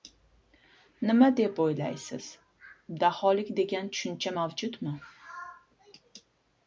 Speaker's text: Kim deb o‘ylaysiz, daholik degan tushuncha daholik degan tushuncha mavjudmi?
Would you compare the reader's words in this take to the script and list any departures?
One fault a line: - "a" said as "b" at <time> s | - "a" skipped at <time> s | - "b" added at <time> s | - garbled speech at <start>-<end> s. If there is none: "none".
- "Kim" said as "Nima" at 1.1 s
- "daholik degan tushuncha" skipped at 4.3 s